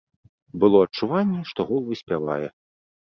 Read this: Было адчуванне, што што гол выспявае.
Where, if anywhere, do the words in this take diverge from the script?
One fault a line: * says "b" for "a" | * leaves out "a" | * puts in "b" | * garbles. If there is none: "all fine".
* leaves out "што"